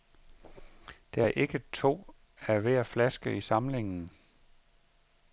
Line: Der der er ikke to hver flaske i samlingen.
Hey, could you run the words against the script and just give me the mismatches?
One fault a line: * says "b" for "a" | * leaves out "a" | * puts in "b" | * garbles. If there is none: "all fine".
* leaves out "der"
* puts in "af"